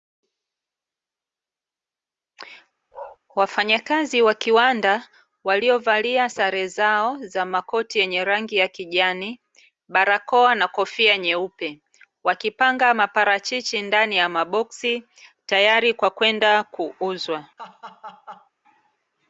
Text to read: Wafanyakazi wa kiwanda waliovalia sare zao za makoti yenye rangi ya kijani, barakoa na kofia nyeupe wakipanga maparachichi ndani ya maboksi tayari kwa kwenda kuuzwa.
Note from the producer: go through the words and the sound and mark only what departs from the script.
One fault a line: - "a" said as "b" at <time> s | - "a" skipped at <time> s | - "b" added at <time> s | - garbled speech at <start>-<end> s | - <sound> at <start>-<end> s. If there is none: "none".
- bark at 2.9-3.2 s
- laugh at 17.6-18.5 s